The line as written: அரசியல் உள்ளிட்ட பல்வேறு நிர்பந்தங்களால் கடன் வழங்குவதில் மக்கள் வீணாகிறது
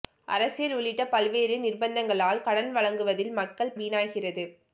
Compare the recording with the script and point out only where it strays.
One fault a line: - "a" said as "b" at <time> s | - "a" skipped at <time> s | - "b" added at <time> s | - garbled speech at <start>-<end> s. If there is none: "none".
none